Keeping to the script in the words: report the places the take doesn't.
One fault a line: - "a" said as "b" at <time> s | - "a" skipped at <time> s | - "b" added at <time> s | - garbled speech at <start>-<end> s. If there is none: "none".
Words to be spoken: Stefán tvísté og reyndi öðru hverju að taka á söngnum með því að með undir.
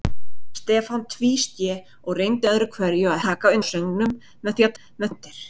none